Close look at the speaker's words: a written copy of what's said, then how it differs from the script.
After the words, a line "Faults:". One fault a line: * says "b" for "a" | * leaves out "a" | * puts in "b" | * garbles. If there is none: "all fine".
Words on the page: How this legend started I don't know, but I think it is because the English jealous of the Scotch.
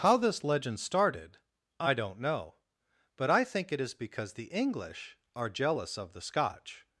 How this legend started I don't know, but I think it is because the English are jealous of the Scotch.
Faults:
* puts in "are"